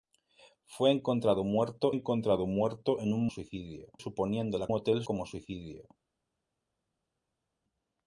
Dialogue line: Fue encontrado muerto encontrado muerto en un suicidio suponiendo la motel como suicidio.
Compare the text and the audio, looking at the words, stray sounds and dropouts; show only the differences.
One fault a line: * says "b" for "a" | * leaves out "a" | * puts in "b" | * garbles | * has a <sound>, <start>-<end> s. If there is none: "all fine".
all fine